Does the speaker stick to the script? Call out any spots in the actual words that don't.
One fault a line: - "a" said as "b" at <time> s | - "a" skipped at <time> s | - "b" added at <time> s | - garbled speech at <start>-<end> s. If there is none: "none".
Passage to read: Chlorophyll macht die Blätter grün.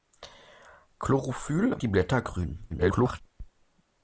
- "macht" skipped at 1.8 s
- garbled speech at 2.7-3.2 s